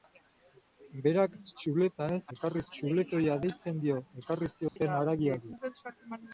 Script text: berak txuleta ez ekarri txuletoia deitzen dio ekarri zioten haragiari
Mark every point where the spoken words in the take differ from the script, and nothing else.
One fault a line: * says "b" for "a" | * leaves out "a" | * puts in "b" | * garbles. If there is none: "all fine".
all fine